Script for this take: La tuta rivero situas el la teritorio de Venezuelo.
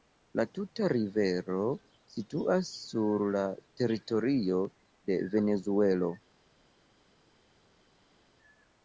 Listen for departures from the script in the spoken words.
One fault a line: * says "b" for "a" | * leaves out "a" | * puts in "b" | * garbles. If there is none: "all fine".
* says "sur" for "el"